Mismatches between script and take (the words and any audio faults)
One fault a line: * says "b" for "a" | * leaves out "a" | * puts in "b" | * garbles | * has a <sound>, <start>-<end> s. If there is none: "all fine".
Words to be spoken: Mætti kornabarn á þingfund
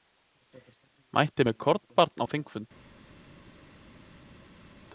* puts in "með"